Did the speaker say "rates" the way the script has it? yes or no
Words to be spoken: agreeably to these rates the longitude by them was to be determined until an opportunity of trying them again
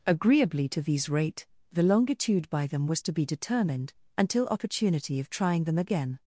no